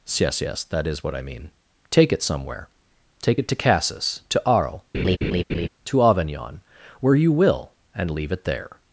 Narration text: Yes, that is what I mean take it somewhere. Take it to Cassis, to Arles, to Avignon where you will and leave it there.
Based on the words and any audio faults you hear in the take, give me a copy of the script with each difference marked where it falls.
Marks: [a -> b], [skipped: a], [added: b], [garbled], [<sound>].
Yes, [added: yes] that is what I mean take it somewhere. Take it to Cassis, to Arles, [laugh] to Avignon where you will and leave it there.